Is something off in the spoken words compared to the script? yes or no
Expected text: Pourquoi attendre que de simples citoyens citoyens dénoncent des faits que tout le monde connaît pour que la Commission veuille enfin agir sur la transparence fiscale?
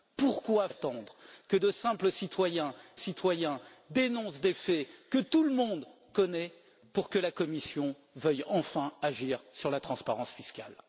no